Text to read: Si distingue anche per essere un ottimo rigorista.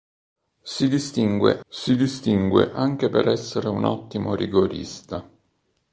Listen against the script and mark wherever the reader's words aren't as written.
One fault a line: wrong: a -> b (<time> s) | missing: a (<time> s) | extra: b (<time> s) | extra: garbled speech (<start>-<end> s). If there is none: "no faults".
extra: si distingue (1.7 s)